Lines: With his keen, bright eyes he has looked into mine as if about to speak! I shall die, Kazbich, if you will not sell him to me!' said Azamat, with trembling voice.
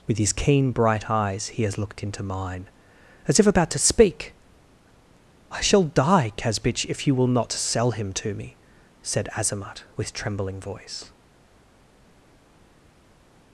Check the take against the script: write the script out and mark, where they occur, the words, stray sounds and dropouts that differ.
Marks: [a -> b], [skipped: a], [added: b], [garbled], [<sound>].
With his keen, bright eyes he has looked into mine as if about to speak! I shall die, Kazbich, if you will not sell him to me!' said Azamat, with trembling voice.